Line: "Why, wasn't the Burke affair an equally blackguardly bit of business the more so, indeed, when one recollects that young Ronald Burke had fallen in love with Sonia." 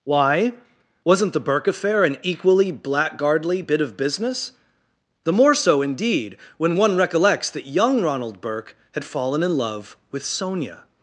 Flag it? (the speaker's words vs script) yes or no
no